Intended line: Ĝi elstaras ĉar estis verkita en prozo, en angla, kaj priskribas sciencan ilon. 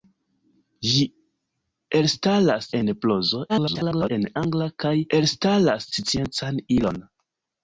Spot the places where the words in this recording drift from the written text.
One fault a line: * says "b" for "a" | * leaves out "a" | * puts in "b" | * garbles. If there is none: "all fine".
* leaves out "ĉar estis verkita"
* garbles
* says "elstaras" for "priskribas"